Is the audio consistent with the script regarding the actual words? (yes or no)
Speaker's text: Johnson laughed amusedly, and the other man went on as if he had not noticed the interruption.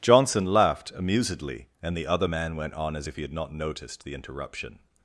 yes